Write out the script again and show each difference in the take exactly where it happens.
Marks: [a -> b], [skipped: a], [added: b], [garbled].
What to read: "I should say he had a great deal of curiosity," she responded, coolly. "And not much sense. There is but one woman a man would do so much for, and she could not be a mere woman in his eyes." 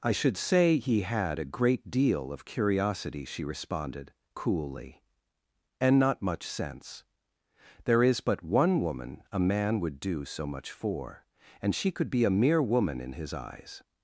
"I should say he had a great deal of curiosity," she responded, coolly. "And not much sense. There is but one woman a man would do so much for, and she could [skipped: not] be a mere woman in his eyes."